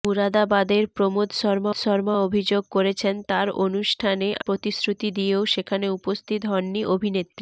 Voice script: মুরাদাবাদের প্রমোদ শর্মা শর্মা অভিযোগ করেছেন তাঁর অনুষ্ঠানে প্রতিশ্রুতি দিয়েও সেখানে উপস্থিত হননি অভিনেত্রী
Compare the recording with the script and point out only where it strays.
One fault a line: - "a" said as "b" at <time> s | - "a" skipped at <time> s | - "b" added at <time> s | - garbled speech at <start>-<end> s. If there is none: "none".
none